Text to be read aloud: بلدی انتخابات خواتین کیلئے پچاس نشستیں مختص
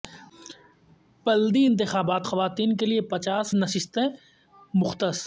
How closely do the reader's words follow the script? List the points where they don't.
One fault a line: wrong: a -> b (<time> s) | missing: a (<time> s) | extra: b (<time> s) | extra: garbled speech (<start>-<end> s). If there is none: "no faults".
no faults